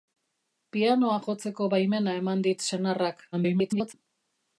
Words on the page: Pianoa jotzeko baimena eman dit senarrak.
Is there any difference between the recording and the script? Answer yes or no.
yes